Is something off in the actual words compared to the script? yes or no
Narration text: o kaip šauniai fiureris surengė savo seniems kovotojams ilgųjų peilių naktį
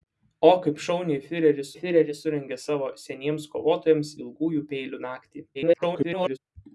yes